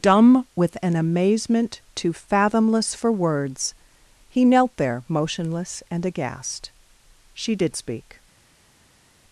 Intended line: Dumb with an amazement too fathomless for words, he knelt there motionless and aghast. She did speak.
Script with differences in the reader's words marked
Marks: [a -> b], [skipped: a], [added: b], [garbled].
Dumb with an amazement too fathomless for words, he knelt there motionless and aghast. She did speak.